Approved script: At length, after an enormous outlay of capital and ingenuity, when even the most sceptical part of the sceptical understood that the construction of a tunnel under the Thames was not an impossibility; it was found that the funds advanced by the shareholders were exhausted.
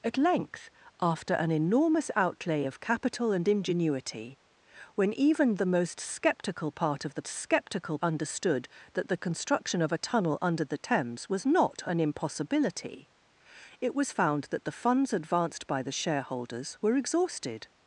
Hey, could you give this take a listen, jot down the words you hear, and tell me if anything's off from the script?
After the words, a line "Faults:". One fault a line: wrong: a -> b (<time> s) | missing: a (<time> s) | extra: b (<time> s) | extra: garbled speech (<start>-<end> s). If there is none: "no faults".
At length, after an enormous outlay of capital and ingenuity, when even the most sceptical part of the sceptical understood that the construction of a tunnel under the Thames was not an impossibility; it was found that the funds advanced by the shareholders were exhausted.
Faults:
no faults